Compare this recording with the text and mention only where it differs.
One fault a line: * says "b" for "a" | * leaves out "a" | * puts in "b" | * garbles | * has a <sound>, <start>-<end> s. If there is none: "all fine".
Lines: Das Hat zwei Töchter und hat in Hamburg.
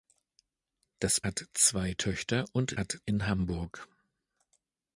all fine